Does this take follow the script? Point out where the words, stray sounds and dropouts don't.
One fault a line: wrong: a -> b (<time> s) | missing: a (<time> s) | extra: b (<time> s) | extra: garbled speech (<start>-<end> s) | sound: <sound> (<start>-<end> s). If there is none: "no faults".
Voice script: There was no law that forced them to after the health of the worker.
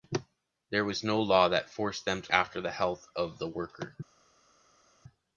no faults